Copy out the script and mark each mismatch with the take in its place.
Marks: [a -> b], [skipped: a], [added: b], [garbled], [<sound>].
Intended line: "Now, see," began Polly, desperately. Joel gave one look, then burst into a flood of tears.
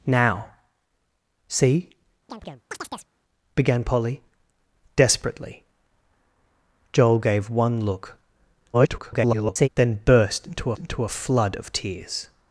"Now, see," [chirp] began Polly, desperately. Joel gave one look, [garbled] then burst into [added: into] a flood of tears.